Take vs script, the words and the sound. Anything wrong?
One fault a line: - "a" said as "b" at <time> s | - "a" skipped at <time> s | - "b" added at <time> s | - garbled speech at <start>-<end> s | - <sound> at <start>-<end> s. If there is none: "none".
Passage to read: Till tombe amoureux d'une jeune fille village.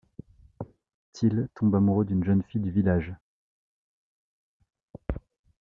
- "du" added at 2.6 s